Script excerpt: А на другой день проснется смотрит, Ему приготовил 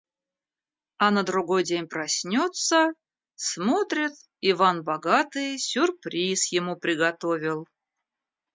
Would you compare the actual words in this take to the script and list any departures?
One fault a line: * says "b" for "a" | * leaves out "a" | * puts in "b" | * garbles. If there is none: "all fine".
* puts in "Иван Богатый сюрприз"